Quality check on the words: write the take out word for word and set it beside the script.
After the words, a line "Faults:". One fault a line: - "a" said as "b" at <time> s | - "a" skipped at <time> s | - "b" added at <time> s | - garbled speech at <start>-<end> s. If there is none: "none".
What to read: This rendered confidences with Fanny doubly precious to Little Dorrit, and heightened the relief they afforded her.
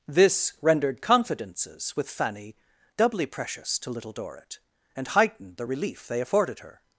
This rendered confidences with Fanny doubly precious to Little Dorrit, and heightened the relief they afforded her.
Faults:
none